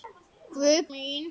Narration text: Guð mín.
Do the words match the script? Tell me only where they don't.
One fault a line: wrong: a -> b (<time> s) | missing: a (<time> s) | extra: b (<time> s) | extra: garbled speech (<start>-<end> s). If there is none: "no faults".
no faults